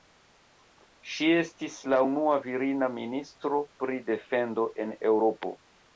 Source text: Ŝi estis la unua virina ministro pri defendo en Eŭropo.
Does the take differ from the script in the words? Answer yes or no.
no